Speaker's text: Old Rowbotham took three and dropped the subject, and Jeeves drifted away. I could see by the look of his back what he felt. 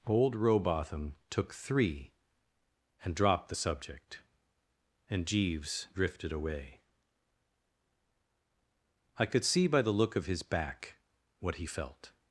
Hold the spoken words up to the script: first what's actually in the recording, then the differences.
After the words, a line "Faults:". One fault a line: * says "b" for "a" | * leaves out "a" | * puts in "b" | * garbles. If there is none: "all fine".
Old Rowbotham took three and dropped the subject, and Jeeves drifted away. I could see by the look of his back what he felt.
Faults:
all fine